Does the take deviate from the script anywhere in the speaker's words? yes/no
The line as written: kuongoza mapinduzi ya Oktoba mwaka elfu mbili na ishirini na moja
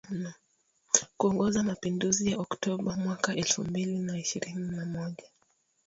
no